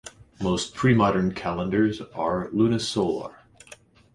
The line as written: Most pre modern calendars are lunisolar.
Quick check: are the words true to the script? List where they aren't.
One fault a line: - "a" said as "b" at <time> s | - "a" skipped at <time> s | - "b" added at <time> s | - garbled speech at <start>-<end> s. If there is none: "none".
none